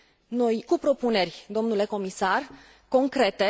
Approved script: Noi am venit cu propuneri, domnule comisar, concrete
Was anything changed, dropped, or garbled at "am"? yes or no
yes